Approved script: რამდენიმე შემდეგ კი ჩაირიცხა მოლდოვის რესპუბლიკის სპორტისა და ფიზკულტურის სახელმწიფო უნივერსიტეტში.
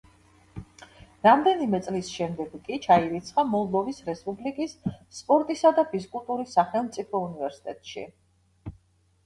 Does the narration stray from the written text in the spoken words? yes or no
yes